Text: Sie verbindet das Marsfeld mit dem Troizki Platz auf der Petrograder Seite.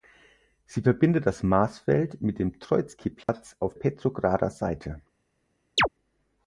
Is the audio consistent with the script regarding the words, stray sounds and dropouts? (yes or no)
no